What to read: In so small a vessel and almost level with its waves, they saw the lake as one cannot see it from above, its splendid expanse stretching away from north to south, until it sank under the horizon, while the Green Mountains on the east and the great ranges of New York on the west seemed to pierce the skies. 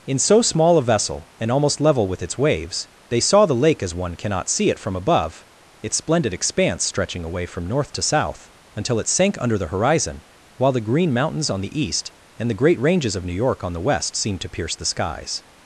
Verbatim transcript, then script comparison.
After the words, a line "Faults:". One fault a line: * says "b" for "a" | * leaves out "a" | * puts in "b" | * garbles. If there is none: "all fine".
In so small a vessel and almost level with its waves, they saw the lake as one cannot see it from above, its splendid expanse stretching away from north to south, until it sank under the horizon, while the Green Mountains on the east and the great ranges of New York on the west seemed to pierce the skies.
Faults:
all fine